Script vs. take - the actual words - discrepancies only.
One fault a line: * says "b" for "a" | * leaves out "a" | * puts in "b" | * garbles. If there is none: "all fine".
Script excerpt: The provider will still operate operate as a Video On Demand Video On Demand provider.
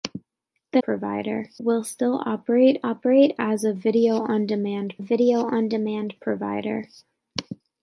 all fine